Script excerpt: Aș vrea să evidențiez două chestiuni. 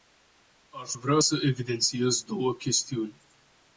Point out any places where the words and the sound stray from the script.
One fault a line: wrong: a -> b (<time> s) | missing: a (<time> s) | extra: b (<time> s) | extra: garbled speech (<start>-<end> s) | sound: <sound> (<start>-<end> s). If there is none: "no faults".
no faults